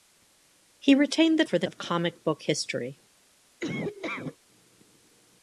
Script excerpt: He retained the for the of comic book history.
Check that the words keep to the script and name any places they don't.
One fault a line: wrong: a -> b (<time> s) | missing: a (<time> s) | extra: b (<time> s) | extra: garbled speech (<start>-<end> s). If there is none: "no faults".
no faults